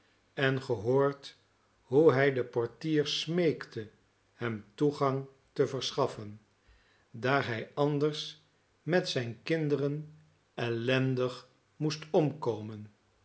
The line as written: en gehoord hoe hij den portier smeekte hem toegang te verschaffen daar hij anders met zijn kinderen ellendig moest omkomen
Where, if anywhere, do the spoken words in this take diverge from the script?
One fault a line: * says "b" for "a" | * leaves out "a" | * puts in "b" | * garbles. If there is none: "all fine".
all fine